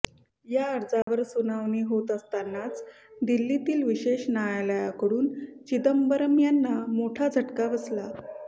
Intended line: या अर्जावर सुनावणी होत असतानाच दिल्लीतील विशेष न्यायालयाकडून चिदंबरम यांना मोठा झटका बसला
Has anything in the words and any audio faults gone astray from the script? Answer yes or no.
yes